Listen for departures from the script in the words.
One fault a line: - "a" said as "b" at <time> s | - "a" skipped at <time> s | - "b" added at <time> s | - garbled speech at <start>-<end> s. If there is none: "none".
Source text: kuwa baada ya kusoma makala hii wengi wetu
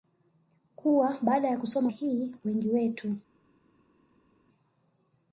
- "makala" skipped at 1.9 s